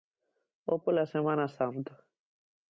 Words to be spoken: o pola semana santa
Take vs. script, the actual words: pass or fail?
pass